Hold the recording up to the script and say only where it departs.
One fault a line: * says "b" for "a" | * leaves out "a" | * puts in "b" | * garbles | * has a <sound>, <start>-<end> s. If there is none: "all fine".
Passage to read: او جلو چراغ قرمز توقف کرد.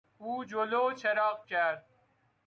* leaves out "قرمز توقف"